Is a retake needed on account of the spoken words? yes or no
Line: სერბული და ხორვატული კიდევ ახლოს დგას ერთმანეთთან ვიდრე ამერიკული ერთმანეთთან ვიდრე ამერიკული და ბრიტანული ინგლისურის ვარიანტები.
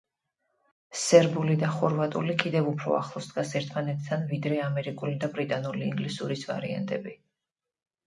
yes